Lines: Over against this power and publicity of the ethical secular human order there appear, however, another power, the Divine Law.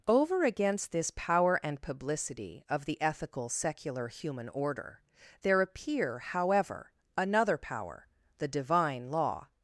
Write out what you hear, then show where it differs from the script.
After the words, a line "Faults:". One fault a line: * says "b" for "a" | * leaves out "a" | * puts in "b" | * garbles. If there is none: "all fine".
Over against this power and publicity of the ethical secular human order there appear, however, another power, the Divine Law.
Faults:
all fine